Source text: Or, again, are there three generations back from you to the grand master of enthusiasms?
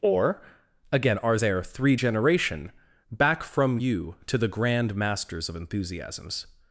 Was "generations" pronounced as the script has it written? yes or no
no